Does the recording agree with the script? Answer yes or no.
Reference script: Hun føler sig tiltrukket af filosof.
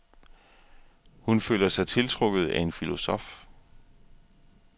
no